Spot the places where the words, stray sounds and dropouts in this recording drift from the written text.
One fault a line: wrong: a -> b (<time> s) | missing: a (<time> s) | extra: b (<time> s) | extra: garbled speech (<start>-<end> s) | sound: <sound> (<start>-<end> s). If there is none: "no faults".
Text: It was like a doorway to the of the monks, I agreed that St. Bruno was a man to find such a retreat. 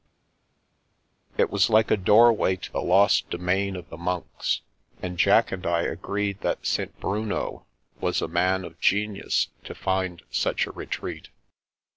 extra: lost domain (2.8 s)
extra: and Jack and (5.0 s)
extra: of genius (8.7 s)